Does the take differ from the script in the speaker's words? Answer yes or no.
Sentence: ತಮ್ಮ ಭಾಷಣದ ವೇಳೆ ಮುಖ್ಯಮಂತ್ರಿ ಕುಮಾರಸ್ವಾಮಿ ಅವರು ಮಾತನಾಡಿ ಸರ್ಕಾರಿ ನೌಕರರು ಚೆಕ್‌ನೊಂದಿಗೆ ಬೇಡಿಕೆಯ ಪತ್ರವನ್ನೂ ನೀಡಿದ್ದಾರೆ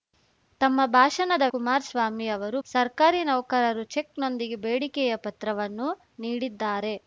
yes